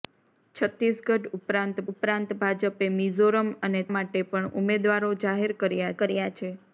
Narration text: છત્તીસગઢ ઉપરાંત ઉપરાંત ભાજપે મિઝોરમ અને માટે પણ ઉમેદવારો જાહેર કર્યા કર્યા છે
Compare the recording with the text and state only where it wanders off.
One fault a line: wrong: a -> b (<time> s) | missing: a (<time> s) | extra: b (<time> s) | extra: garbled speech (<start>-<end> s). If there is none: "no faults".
no faults